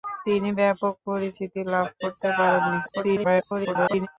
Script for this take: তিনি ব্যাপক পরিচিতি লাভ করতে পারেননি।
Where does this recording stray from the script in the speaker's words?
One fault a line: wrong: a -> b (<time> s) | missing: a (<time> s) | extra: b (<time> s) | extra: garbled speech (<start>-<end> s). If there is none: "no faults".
extra: garbled speech (2.8-4.1 s)